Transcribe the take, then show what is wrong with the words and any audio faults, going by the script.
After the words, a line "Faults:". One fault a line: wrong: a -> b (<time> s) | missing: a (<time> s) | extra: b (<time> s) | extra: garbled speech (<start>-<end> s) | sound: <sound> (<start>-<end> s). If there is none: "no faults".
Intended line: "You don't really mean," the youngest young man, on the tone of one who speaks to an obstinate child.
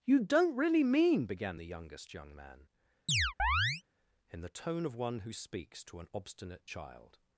"You don't really mean," began the youngest young man, in the tone of one who speaks to an obstinate child.
Faults:
extra: began (1.3 s)
sound: chirp (3.1-3.8 s)
wrong: on -> in (4.3 s)